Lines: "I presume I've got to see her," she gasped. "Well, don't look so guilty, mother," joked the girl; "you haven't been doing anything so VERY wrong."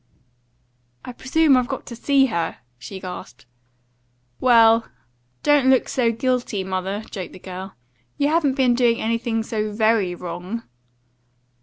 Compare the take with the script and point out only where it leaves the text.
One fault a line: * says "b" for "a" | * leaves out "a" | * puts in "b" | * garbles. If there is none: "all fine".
all fine